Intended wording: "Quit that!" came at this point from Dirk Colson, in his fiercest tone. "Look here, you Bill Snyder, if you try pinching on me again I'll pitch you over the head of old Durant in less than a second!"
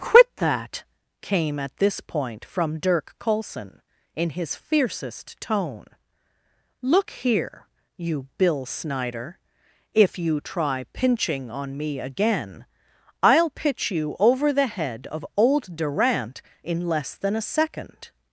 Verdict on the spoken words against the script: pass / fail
pass